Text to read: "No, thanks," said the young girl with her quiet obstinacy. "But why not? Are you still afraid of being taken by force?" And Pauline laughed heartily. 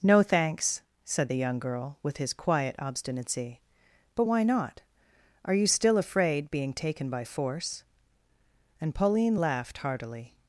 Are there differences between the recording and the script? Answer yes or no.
yes